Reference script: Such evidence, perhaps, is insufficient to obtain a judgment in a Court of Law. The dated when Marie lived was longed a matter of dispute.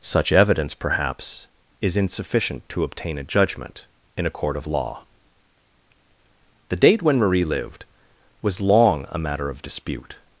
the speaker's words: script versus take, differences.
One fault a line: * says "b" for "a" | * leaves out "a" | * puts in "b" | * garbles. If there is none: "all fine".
* says "date" for "dated"
* says "long" for "longed"